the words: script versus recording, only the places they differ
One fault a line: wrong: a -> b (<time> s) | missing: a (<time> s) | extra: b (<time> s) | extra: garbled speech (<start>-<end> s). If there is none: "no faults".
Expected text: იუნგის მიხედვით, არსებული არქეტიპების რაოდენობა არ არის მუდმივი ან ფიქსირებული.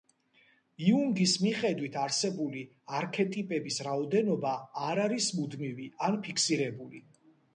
no faults